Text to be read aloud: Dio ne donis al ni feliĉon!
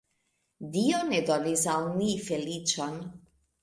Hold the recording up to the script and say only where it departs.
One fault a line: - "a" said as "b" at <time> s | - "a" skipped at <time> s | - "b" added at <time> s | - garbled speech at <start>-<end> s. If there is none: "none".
none